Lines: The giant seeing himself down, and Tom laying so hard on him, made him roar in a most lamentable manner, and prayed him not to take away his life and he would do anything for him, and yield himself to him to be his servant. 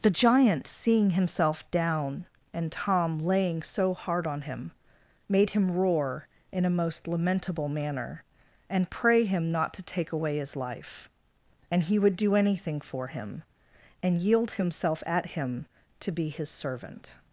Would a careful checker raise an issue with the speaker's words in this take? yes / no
yes